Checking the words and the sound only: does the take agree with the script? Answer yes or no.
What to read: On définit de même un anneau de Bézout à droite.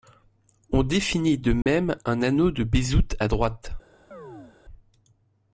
no